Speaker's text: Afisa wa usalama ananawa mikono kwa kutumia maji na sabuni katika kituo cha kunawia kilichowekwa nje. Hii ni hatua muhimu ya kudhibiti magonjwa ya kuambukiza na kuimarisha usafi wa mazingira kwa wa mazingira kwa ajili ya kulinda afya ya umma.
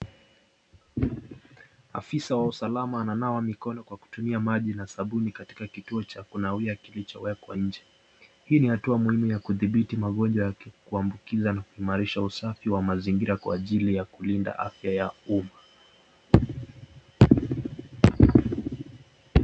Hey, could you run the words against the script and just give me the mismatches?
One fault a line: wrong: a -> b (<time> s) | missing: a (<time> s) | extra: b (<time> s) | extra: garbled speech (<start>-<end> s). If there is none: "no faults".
missing: wa mazingira kwa (13.5 s)